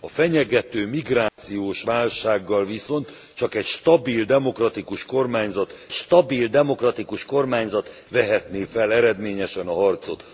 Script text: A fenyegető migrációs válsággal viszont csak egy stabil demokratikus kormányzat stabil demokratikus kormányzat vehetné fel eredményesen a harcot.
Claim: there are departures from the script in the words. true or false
false